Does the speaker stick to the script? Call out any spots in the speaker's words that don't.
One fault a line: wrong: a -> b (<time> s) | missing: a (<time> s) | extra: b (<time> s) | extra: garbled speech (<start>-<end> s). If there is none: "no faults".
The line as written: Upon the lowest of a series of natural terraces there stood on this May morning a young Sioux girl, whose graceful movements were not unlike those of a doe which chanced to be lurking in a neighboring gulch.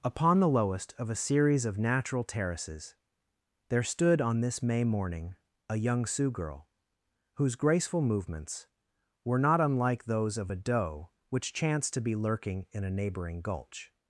no faults